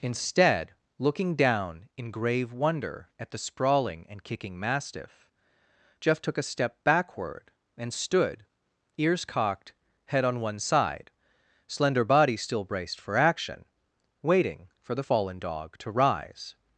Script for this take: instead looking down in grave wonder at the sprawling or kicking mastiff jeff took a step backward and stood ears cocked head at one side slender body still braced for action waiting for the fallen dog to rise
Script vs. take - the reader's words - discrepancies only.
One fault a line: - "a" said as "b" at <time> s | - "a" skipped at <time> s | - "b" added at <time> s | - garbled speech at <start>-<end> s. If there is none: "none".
- "or" said as "and" at 4.1 s
- "at" said as "on" at 10.2 s